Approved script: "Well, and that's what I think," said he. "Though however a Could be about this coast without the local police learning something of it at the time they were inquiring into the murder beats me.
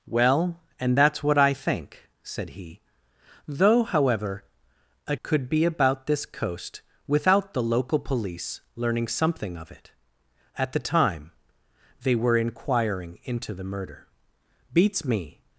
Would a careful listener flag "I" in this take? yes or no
no